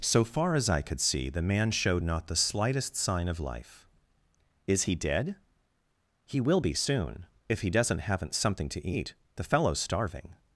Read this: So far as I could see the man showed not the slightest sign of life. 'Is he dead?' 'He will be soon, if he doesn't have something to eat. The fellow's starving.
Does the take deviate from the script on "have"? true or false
true